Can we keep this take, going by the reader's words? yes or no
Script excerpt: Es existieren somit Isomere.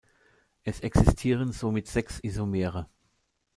no